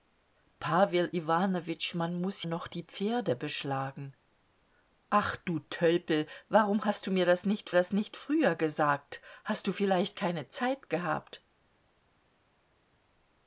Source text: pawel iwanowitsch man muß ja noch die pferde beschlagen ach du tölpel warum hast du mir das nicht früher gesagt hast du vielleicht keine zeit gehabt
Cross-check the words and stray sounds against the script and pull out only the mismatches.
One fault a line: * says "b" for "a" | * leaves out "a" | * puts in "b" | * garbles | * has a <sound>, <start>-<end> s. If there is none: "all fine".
* leaves out "ja"
* puts in "das nicht"